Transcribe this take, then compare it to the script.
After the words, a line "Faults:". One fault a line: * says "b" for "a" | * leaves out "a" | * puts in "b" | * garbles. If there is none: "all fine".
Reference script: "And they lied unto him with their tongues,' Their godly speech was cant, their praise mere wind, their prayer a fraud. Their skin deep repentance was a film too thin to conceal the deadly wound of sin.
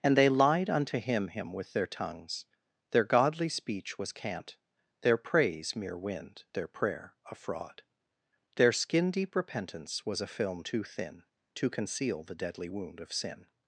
"And they lied unto him him with their tongues,' Their godly speech was cant, their praise mere wind, their prayer a fraud. Their skin deep repentance was a film too thin to conceal the deadly wound of sin.
Faults:
* puts in "him"